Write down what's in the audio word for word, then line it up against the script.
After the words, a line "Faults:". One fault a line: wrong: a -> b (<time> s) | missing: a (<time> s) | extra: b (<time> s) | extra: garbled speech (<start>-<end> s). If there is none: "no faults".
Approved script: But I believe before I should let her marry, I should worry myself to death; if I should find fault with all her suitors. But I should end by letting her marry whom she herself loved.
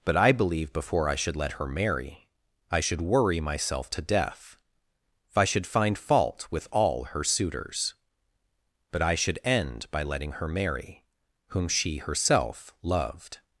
But I believe before I should let her marry, I should worry myself to death; if I should find fault with all her suitors. But I should end by letting her marry whom she herself loved.
Faults:
no faults